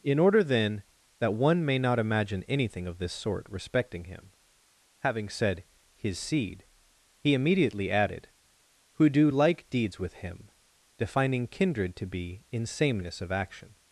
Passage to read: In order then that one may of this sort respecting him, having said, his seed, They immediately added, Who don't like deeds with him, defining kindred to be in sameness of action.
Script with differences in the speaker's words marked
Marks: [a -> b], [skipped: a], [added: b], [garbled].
In order then that one may [added: not imagine anything] of this sort respecting him, having said, his seed, [They -> He] immediately added, Who [don't -> do] like deeds with him, defining kindred to be in sameness of action.